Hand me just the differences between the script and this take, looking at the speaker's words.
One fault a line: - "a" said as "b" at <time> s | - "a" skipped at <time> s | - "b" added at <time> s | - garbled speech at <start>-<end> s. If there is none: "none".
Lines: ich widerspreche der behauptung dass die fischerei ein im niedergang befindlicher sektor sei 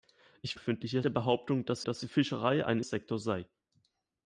- "widerspreche" said as "befindlicher" at 0.5 s
- "dass" added at 1.8 s
- "im niedergang befindlicher" skipped at 2.8 s